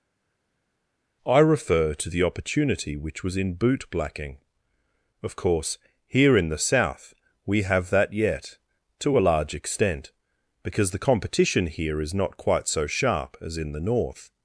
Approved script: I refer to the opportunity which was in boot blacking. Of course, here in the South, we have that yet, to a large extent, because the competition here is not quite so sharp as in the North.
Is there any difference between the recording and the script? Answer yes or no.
no